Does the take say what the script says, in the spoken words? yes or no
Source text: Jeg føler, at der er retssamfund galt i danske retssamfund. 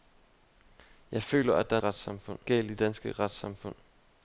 yes